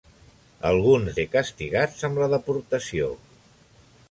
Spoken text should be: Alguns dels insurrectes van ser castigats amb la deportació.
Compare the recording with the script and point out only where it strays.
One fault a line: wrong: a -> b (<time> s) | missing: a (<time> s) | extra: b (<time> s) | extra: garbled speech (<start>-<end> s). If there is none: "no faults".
missing: dels insurrectes van (1.2 s)